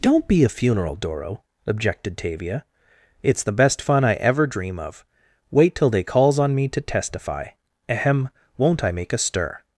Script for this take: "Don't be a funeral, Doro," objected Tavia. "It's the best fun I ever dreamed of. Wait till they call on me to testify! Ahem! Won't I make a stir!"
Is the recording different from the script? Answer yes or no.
yes